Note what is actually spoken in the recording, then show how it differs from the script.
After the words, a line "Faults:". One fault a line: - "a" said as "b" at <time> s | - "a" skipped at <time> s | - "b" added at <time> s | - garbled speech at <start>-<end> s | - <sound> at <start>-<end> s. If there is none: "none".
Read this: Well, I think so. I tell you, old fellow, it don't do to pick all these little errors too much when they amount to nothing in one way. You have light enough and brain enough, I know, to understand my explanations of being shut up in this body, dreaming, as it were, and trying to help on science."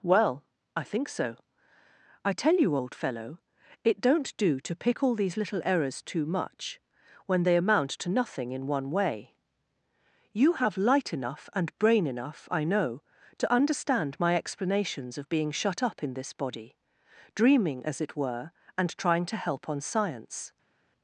Well, I think so. I tell you, old fellow, it don't do to pick all these little errors too much when they amount to nothing in one way. You have light enough and brain enough, I know, to understand my explanations of being shut up in this body, dreaming, as it were, and trying to help on science."
Faults:
none